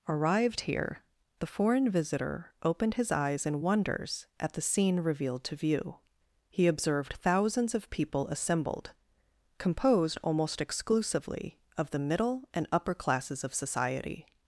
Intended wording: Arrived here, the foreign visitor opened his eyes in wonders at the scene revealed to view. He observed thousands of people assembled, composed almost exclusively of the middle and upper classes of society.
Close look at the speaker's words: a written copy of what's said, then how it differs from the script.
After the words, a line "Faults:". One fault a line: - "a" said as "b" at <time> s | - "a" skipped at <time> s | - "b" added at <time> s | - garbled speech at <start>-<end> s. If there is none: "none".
Arrived here, the foreign visitor opened his eyes in wonders at the scene revealed to view. He observed thousands of people assembled, composed almost exclusively of the middle and upper classes of society.
Faults:
none